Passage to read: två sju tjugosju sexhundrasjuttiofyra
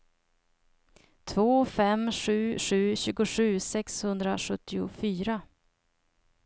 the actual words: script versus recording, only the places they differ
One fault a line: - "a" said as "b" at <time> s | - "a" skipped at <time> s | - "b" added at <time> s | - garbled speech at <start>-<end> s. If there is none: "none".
- "fem sju" added at 1.6 s